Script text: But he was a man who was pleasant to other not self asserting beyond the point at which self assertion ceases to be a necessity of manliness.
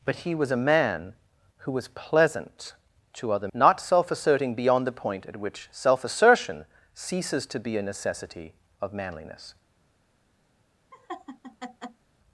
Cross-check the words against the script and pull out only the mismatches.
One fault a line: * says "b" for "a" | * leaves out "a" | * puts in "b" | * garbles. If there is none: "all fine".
all fine